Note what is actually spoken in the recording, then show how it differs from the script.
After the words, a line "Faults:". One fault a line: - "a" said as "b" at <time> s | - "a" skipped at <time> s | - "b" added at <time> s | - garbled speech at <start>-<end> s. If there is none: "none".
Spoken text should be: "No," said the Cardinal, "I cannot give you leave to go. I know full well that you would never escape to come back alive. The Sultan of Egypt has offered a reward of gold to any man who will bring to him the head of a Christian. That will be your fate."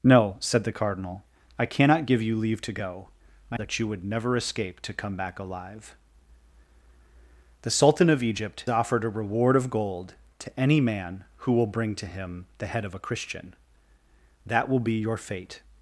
"No," said the Cardinal, "I cannot give you leave to go. I that you would never escape to come back alive. The Sultan of Egypt offered a reward of gold to any man who will bring to him the head of a Christian. That will be your fate."
Faults:
- "know full well" skipped at 3.6 s
- "has" skipped at 8.6 s